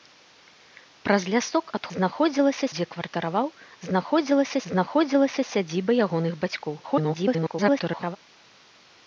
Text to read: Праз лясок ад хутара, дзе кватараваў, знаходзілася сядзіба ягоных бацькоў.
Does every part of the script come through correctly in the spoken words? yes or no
no